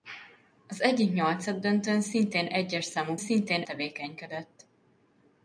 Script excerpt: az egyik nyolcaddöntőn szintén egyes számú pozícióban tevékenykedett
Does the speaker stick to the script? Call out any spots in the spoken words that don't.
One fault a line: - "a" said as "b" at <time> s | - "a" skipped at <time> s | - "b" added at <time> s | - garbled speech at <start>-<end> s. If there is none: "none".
- "pozícióban" said as "szintén" at 3.2 s